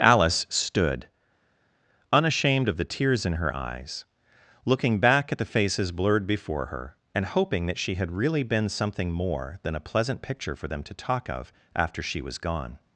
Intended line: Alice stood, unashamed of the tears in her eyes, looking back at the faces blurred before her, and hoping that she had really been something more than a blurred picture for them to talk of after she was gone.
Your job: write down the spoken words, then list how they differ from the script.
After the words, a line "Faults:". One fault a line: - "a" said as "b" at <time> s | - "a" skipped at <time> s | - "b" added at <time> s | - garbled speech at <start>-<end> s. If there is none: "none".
Alice stood, unashamed of the tears in her eyes, looking back at the faces blurred before her, and hoping that she had really been something more than a pleasant picture for them to talk of after she was gone.
Faults:
- "blurred" said as "pleasant" at 9.8 s